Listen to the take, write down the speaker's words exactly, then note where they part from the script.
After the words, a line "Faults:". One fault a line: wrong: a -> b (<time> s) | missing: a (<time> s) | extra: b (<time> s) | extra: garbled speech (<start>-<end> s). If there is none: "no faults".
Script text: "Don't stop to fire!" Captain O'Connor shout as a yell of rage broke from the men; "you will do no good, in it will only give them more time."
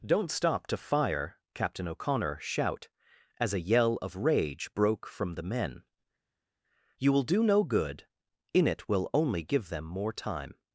"Don't stop to fire!" Captain O'Connor shout as a yell of rage broke from the men; "you will do no good, in it will only give them more time."
Faults:
no faults